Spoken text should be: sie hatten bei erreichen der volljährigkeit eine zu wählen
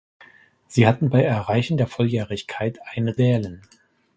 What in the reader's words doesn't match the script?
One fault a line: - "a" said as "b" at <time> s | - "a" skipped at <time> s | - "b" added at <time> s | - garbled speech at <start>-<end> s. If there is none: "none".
- "zu" skipped at 3.2 s